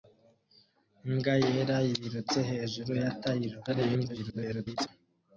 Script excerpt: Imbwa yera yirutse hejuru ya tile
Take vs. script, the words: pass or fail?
fail